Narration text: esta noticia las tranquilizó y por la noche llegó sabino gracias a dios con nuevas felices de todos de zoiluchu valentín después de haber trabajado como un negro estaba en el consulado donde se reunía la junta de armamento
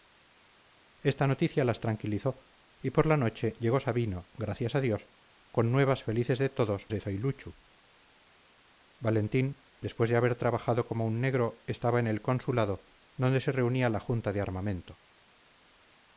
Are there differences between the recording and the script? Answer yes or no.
no